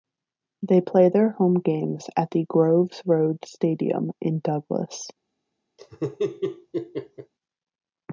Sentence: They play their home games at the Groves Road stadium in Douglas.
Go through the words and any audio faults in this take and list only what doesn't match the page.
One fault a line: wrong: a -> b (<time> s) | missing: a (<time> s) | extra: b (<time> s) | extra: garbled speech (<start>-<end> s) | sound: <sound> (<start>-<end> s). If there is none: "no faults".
sound: laugh (5.8-7.3 s)